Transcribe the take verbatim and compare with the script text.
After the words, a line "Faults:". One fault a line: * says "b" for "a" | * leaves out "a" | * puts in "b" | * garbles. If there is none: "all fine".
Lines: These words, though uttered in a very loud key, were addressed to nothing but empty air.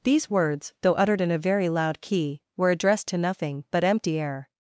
These words, though uttered in a very loud key, were addressed to nothing but empty air.
Faults:
all fine